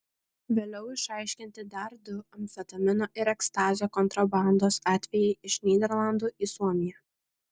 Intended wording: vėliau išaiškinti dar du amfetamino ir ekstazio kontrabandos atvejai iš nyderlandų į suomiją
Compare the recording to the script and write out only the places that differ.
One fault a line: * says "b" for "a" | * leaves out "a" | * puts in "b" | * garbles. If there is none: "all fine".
all fine